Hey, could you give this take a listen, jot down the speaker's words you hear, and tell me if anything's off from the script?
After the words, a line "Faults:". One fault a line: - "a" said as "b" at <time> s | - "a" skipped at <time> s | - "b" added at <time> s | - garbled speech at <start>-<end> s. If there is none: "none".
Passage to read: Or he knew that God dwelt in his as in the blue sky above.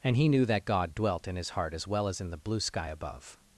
And he knew that God dwelt in his heart as well as in the blue sky above.
Faults:
- "Or" said as "And" at 0.0 s
- "heart as well" added at 1.5 s